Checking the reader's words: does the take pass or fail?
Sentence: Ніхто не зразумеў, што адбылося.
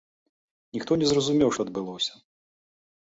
pass